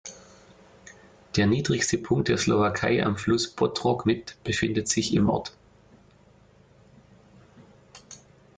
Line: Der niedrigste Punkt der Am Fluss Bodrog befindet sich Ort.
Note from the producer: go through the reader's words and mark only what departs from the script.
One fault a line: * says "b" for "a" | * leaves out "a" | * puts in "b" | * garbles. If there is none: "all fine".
* puts in "Slowakei"
* puts in "mit"
* puts in "im"